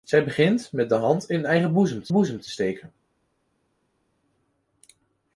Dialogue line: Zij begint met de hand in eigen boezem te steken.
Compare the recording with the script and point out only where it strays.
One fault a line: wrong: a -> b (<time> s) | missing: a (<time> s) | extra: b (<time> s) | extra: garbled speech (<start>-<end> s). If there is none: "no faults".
extra: boezem te (2.1 s)